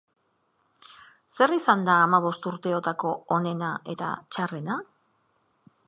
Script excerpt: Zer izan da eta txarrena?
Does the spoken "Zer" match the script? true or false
true